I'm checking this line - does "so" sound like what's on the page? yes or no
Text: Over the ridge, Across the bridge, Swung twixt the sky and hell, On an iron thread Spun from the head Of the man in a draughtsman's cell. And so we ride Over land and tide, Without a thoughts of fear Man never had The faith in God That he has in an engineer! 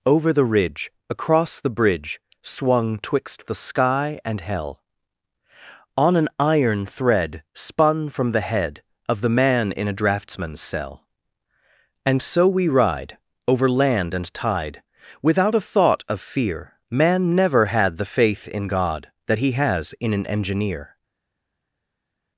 yes